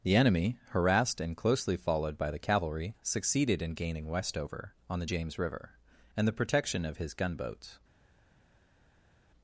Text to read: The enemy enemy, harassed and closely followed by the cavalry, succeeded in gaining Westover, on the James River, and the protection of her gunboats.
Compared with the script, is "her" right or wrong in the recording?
wrong